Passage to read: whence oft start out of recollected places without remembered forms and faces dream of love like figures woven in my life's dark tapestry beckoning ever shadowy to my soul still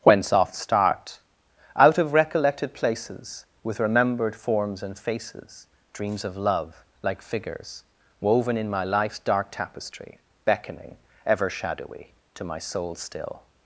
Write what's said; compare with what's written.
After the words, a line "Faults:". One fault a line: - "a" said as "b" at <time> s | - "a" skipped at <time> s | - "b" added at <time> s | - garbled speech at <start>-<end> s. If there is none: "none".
whence oft start out of recollected places with remembered forms and faces dreams of love like figures woven in my life's dark tapestry beckoning ever shadowy to my soul still
Faults:
- "without" said as "with" at 3.6 s
- "dream" said as "dreams" at 5.9 s